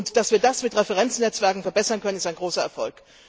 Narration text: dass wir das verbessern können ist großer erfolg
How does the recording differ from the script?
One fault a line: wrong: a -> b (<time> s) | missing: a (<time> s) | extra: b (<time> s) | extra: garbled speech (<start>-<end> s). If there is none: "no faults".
extra: mit referenznetzwerken (0.6 s)
extra: ein (2.2 s)